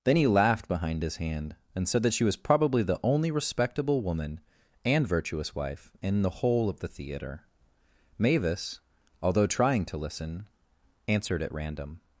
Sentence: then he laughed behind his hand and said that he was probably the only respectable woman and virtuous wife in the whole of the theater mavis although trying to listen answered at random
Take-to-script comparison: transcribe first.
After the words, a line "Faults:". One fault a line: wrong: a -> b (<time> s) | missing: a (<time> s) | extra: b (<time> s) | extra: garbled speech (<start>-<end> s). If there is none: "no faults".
then he laughed behind his hand and said that she was probably the only respectable woman and virtuous wife in the whole of the theater mavis although trying to listen answered at random
Faults:
wrong: he -> she (2.1 s)